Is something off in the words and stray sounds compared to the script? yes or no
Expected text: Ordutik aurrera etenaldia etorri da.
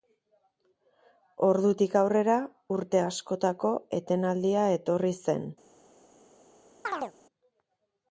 yes